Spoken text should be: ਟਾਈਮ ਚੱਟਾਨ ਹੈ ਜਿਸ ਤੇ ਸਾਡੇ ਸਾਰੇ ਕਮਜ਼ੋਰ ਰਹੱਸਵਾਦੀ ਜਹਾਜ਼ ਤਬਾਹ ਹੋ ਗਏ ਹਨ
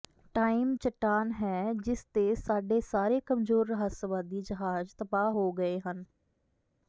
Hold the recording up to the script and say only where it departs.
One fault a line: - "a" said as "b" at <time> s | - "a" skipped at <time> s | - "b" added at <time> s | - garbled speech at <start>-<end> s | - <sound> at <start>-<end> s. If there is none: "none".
none